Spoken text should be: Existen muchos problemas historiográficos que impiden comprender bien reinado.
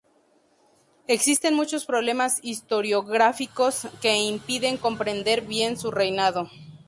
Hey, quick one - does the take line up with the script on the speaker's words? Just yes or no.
no